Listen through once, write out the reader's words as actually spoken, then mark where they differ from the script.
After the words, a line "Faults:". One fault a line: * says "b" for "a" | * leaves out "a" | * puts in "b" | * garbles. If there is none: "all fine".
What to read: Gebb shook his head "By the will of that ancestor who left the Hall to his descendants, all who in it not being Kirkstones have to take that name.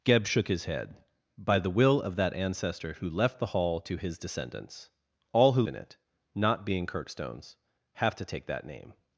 Gebb shook his head "By the will of that ancestor who left the Hall to his descendants, all who in it not being Kirkstones have to take that name.
Faults:
all fine